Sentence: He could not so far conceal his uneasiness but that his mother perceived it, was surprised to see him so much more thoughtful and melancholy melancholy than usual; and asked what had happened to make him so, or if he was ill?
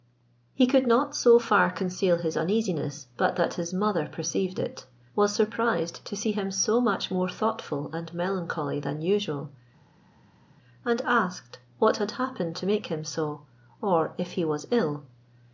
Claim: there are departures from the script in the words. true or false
true